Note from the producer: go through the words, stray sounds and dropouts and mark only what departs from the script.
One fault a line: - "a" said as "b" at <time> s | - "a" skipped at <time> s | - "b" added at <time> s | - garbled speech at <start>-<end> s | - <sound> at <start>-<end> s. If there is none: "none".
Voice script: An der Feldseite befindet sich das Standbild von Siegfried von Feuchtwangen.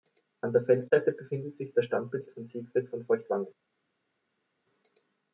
none